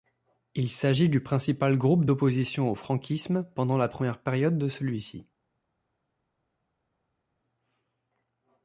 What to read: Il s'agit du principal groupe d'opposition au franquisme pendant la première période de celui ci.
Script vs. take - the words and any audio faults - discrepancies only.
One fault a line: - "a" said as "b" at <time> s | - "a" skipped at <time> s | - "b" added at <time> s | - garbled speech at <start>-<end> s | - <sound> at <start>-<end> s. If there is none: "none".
none